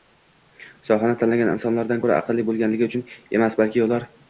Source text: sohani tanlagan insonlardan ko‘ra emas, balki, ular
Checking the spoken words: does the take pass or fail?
fail